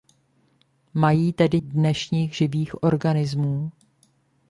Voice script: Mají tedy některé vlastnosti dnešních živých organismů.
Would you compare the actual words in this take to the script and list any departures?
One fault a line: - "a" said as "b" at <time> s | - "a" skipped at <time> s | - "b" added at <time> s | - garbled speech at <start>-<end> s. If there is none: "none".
- "některé vlastnosti" skipped at 1.6 s